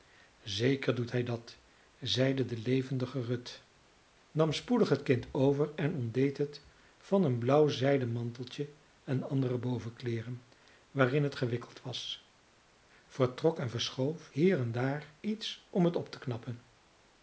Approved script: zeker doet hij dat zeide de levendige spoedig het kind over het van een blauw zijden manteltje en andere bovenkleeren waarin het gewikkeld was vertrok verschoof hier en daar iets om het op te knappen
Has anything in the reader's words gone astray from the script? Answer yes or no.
yes